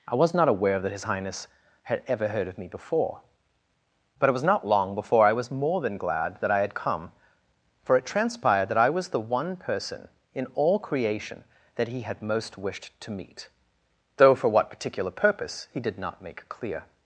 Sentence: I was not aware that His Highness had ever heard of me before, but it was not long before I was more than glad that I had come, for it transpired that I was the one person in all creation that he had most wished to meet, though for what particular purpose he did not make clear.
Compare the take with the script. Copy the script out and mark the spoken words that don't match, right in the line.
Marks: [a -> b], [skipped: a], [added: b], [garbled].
I was not aware that His Highness had ever heard of me before, but it was not long before I was more than glad that I had come, for it transpired that I was the one person in all creation that he had most wished to meet, though for what particular purpose he did not make clear.